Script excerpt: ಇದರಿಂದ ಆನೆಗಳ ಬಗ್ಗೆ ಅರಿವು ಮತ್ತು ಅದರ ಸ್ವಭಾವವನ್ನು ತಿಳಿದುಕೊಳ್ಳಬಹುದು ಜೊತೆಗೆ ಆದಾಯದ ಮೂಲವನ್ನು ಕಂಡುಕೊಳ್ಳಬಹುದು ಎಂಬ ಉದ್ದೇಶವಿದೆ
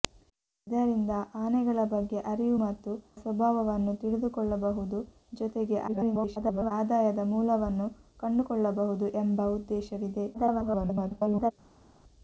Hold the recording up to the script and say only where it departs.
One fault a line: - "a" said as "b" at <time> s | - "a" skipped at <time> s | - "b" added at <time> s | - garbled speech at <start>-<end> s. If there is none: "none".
- "ಅದರ" skipped at 2.9 s
- garbled speech at 5.9-6.7 s
- garbled speech at 10.3-11.5 s